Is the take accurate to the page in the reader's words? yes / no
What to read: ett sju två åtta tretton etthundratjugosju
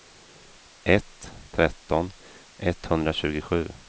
no